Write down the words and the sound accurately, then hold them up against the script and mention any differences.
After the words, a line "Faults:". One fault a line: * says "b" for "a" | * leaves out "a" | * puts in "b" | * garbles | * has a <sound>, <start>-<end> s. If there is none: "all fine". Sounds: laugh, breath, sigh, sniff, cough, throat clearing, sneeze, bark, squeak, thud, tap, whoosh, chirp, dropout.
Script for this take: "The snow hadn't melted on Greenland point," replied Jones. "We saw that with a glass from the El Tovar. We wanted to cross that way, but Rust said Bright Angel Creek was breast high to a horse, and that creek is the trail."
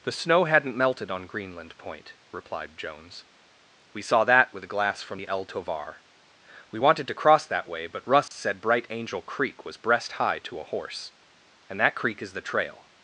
"The snow hadn't melted on Greenland point," replied Jones. "We saw that with a glass from the El Tovar. We wanted to cross that way, but Rust said Bright Angel Creek was breast high to a horse, and that creek is the trail."
Faults:
* has a dropout, 8.3-8.3 s